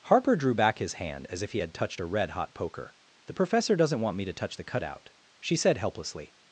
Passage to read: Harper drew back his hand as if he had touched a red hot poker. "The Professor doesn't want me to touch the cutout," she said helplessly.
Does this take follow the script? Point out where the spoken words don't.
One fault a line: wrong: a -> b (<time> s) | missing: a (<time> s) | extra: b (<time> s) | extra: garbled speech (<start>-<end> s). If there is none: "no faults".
no faults